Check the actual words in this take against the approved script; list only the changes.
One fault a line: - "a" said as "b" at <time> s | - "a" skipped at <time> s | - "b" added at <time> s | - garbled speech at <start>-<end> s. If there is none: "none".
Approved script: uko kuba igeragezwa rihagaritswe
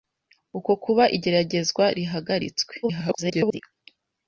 - garbled speech at 2.8-3.6 s